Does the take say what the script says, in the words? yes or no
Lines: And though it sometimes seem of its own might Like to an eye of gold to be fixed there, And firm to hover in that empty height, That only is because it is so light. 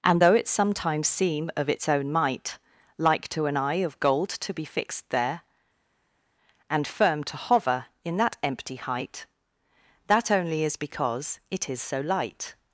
yes